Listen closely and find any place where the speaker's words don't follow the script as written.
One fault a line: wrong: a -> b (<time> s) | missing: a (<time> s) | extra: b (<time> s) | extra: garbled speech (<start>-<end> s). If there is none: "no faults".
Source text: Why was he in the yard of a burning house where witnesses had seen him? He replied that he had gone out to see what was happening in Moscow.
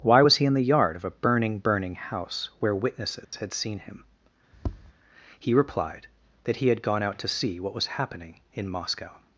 extra: burning (1.6 s)